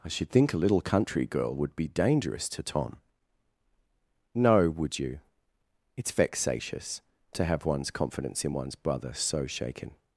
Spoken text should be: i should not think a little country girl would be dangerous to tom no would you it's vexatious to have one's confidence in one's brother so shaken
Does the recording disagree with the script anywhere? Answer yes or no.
yes